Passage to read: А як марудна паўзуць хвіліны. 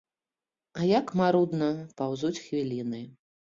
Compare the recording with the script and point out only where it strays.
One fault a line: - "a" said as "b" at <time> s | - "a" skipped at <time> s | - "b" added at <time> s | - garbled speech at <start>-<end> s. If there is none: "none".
none